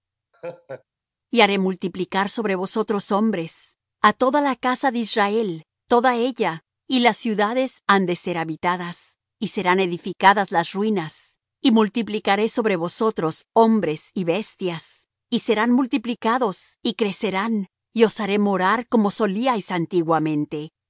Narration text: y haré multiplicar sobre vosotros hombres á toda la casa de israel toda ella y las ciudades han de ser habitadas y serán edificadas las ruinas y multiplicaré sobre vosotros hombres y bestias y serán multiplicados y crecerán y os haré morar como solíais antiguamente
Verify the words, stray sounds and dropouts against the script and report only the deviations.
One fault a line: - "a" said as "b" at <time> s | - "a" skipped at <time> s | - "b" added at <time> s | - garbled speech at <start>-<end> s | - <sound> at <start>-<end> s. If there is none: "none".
- laugh at 0.3-0.8 s